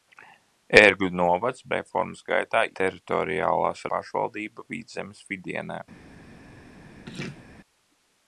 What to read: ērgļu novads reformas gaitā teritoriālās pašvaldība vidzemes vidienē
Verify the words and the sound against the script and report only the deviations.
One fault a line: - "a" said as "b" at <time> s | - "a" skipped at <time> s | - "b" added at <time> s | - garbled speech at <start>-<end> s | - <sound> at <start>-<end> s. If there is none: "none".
- laugh at 7.1-7.4 s